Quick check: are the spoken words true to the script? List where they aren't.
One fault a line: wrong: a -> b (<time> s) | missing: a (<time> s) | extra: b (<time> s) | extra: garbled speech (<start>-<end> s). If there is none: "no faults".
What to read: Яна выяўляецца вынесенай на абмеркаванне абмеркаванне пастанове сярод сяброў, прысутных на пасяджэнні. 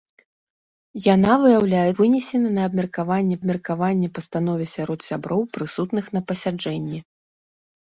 no faults